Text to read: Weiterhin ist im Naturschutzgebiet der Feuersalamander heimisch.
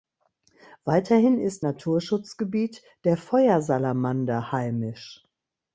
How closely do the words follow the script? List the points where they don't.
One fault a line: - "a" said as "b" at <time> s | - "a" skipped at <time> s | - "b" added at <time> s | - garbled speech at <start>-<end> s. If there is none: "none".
- "im" skipped at 1.7 s